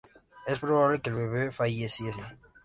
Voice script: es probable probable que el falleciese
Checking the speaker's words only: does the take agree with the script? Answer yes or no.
no